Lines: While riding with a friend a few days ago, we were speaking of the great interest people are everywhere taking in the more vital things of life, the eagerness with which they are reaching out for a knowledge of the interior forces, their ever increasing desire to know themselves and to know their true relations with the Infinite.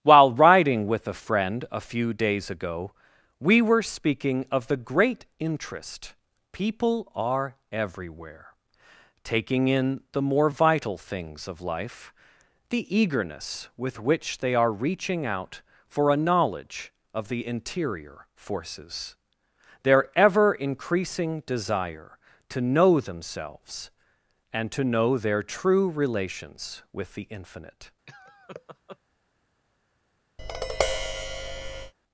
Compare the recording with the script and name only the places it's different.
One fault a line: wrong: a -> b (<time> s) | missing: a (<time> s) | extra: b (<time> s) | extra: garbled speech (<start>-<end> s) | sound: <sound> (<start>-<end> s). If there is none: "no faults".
sound: laugh (28.1-29.0 s)
sound: tap (30.4-31.9 s)